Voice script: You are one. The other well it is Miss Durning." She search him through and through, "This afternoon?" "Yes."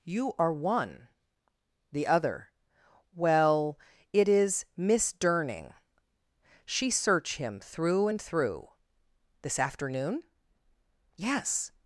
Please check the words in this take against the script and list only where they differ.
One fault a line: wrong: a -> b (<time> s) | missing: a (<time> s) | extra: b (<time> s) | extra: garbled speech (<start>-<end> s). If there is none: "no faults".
no faults